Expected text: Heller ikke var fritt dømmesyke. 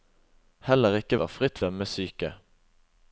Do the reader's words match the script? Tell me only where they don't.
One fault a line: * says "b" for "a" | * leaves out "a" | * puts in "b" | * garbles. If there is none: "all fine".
all fine